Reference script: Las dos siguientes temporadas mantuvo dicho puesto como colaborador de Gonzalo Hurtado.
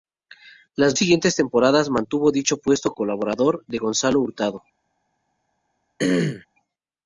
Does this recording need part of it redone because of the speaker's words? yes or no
yes